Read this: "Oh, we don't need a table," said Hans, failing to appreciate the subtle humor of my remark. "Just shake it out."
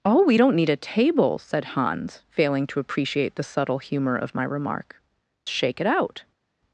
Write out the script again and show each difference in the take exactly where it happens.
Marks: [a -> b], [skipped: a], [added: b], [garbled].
"Oh, we don't need a table," said Hans, failing to appreciate the subtle humor of my remark. [skipped: "Just] shake it out."